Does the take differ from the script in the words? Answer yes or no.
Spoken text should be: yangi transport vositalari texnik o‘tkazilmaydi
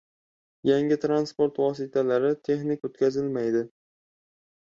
no